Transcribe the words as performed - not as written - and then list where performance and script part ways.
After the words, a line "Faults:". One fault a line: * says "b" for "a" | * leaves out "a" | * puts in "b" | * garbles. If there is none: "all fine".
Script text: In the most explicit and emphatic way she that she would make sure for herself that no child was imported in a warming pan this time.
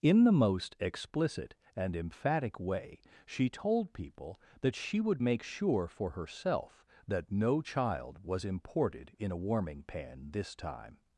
In the most explicit and emphatic way she told people that she would make sure for herself that no child was imported in a warming pan this time.
Faults:
* puts in "told people"